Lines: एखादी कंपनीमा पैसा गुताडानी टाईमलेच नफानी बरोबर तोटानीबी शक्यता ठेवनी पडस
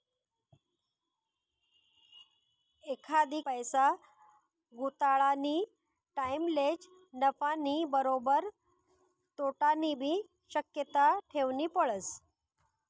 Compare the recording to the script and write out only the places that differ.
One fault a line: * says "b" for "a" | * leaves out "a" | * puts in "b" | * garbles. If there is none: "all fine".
* leaves out "कंपनीमा"